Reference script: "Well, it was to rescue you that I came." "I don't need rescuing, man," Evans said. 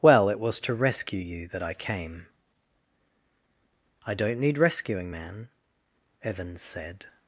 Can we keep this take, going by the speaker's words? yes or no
yes